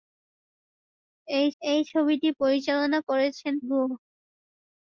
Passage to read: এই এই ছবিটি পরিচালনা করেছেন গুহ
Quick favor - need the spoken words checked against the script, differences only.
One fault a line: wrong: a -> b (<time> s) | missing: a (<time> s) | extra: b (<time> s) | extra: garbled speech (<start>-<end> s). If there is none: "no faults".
no faults